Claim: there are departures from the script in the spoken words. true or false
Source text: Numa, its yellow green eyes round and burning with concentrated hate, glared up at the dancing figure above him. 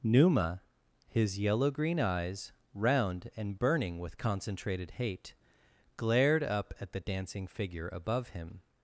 true